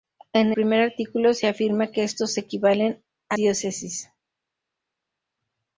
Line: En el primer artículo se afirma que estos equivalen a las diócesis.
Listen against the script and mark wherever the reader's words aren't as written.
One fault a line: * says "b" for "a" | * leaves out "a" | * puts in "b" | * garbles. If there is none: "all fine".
* leaves out "el"
* leaves out "las"